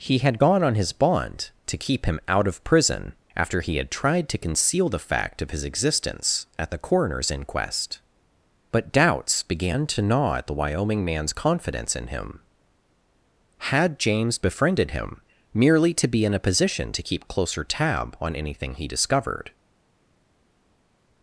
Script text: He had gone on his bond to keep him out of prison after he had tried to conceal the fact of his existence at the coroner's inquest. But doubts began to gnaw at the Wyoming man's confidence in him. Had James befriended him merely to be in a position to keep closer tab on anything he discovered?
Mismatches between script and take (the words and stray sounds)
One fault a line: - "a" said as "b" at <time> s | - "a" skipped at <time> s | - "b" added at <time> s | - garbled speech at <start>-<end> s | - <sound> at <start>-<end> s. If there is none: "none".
none